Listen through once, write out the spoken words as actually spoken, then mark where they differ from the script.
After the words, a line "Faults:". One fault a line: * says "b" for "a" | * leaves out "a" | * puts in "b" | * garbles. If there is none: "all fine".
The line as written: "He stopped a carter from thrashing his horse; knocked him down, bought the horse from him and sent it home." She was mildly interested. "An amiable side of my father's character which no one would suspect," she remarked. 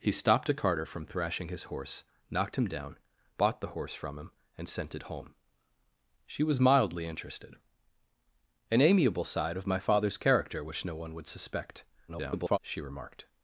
"He stopped a carter from thrashing his horse; knocked him down, bought the horse from him and sent it home." She was mildly interested. "An amiable side of my father's character which no one would suspect," [garbled] she remarked.
Faults:
* garbles